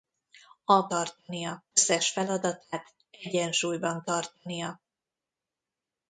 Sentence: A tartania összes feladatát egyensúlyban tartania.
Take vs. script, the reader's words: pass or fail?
pass